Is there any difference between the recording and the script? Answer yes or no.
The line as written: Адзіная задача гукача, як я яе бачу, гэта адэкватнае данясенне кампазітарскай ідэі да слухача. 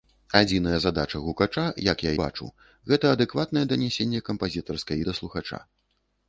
yes